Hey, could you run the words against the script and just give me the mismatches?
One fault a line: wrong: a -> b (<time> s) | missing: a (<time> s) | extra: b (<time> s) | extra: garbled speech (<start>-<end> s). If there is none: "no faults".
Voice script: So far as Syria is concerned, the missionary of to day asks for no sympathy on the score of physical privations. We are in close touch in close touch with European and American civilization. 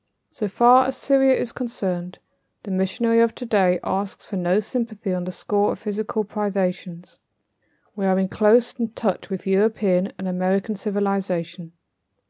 missing: in close touch (9.3 s)